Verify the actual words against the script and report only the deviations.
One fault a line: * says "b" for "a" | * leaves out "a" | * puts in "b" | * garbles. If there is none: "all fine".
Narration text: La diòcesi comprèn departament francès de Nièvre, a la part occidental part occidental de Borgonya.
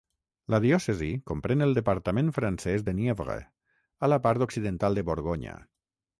* puts in "el"
* leaves out "part occidental"